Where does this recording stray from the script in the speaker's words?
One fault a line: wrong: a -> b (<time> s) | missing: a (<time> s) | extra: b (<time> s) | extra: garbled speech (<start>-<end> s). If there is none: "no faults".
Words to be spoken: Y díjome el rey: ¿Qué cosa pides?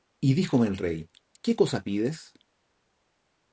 no faults